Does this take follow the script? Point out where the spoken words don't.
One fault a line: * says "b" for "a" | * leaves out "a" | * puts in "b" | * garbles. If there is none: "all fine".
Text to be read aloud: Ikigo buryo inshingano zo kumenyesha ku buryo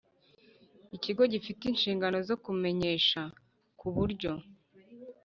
* says "gifite" for "buryo"